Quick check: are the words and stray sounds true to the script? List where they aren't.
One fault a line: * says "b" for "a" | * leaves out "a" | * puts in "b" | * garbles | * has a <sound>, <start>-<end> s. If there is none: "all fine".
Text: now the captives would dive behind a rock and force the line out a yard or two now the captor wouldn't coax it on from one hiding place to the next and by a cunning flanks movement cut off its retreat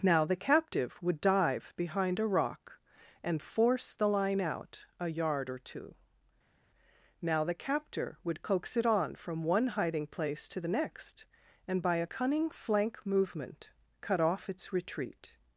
* says "captive" for "captives"
* says "would" for "wouldn't"
* says "flank" for "flanks"